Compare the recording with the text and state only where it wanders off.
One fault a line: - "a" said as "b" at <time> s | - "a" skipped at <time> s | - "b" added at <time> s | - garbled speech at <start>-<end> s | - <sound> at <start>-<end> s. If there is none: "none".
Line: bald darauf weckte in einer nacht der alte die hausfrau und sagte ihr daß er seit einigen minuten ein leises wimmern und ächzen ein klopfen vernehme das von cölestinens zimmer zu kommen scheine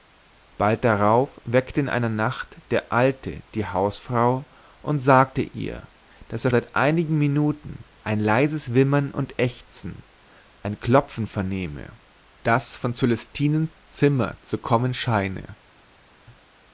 none